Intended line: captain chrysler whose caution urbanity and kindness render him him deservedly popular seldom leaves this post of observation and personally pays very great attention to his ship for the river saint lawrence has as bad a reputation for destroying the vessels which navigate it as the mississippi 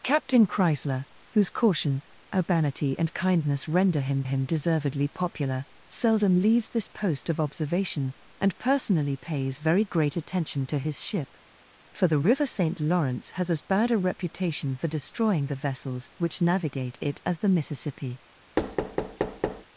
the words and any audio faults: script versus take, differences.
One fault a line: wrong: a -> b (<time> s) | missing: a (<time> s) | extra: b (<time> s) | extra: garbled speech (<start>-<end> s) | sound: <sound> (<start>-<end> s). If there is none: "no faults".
sound: thud (18.6-19.6 s)